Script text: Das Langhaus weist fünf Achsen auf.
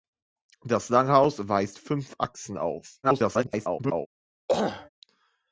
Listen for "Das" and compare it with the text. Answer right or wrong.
right